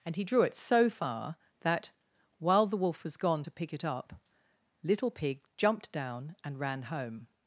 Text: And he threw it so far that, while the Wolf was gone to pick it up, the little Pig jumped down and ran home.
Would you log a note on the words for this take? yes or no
yes